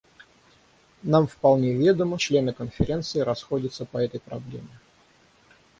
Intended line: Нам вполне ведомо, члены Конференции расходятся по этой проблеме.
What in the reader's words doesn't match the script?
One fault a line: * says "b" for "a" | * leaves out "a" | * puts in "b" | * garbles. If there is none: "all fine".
all fine